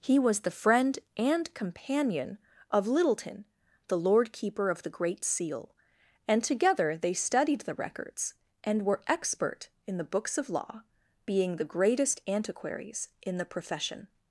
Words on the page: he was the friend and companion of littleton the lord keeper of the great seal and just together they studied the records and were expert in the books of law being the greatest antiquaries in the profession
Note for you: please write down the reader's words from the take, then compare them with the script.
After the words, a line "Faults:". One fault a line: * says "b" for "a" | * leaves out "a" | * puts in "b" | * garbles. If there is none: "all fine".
he was the friend and companion of littleton the lord keeper of the great seal and together they studied the records and were expert in the books of law being the greatest antiquaries in the profession
Faults:
* leaves out "just"